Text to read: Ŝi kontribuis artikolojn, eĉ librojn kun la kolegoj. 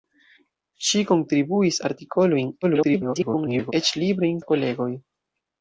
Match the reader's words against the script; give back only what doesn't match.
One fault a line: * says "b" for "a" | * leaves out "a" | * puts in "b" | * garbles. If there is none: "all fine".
* garbles
* leaves out "kun"